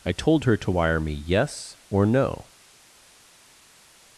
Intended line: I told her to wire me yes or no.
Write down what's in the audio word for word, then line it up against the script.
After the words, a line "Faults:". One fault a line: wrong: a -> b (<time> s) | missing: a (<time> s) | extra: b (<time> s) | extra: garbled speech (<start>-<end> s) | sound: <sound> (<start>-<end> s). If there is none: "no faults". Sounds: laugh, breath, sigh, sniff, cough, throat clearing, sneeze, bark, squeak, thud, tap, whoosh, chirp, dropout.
I told her to wire me yes or no.
Faults:
no faults